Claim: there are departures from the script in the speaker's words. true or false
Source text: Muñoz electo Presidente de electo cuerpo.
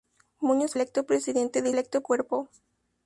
false